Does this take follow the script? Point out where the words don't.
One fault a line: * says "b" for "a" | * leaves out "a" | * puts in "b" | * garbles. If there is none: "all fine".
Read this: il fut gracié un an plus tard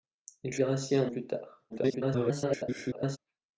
* leaves out "fut"
* leaves out "an"
* garbles